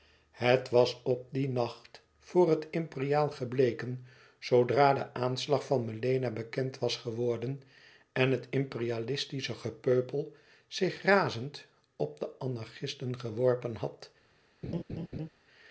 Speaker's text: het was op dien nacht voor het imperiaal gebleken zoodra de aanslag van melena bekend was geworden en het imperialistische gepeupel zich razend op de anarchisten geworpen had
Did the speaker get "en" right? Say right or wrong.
right